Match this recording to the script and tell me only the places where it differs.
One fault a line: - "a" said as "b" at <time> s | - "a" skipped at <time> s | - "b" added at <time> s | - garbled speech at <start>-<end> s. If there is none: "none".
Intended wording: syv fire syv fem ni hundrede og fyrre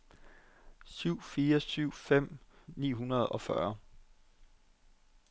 none